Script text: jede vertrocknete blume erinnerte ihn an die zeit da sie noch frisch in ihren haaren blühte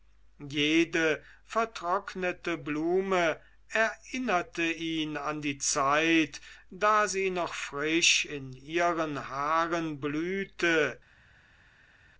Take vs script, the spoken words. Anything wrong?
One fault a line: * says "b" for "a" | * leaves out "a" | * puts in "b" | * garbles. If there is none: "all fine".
all fine